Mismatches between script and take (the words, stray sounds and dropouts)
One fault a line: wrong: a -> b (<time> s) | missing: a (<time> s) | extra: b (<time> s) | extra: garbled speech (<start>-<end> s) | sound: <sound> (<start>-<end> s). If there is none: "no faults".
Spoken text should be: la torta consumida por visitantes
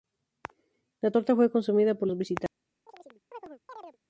extra: fue (1.4 s)
extra: los (2.0 s)
sound: chirp (2.9-4.0 s)